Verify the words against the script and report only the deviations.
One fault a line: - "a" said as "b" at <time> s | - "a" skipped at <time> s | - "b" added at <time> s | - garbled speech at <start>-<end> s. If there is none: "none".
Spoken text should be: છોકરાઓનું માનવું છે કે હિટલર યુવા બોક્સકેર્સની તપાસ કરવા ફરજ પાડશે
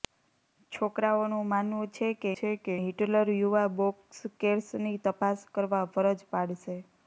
- "છે કે" added at 2.3 s